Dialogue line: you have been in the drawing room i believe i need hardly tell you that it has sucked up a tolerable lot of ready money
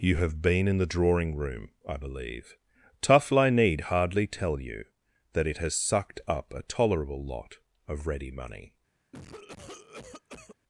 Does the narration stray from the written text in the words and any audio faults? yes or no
yes